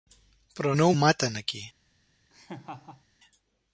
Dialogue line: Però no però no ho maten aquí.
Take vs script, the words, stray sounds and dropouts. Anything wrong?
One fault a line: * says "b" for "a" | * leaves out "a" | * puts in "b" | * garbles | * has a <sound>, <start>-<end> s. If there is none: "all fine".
* leaves out "però no"
* has a laugh, 2.3-3.0 s